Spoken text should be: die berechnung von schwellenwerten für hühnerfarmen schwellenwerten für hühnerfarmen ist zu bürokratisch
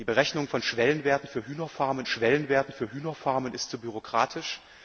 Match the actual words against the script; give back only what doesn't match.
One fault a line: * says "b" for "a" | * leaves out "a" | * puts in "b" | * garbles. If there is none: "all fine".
all fine